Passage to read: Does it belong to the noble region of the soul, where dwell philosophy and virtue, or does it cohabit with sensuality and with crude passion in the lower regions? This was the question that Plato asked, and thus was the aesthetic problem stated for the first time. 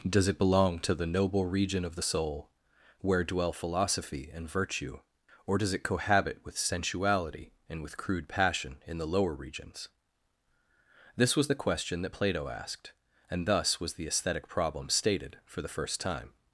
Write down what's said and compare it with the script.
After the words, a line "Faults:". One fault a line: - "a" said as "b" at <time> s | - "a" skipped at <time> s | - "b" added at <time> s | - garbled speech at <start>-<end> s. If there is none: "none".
Does it belong to the noble region of the soul, where dwell philosophy and virtue, or does it cohabit with sensuality and with crude passion in the lower regions? This was the question that Plato asked, and thus was the aesthetic problem stated for the first time.
Faults:
none